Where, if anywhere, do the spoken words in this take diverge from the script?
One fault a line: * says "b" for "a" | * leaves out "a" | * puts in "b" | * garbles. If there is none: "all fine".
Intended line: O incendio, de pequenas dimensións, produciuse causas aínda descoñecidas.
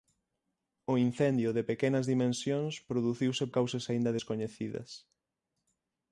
all fine